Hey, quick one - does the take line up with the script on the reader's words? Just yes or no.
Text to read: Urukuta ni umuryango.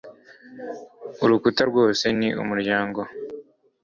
no